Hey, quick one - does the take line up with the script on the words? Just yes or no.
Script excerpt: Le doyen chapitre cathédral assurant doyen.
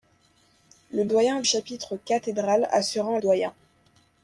yes